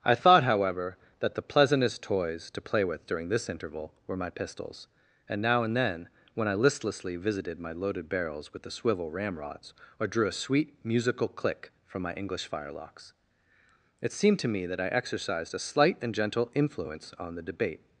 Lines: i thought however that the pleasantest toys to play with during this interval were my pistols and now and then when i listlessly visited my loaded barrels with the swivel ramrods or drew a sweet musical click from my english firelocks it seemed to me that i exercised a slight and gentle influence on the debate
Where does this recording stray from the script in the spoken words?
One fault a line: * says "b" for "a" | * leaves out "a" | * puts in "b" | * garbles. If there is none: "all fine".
all fine